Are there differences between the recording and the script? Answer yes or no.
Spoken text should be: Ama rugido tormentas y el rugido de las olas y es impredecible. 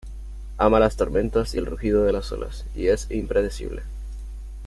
yes